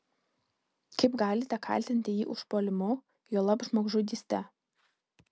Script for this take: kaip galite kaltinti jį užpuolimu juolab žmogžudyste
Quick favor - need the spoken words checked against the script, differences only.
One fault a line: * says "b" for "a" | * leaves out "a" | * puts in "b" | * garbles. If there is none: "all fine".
all fine